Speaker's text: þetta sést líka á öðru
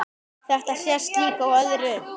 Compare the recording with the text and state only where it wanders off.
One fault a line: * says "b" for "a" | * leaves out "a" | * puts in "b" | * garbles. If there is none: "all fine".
all fine